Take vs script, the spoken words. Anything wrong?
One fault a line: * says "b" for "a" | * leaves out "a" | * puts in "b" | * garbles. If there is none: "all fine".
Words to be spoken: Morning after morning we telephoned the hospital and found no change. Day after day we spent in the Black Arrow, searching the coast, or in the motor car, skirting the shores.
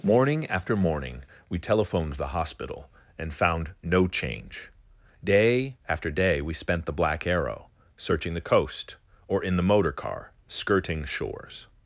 * leaves out "in"
* leaves out "the"